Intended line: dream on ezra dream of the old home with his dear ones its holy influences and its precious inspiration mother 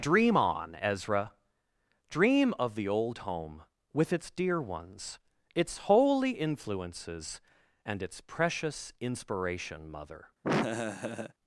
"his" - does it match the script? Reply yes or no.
no